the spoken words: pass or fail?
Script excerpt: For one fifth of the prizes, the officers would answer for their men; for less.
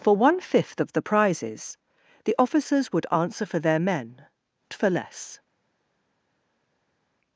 pass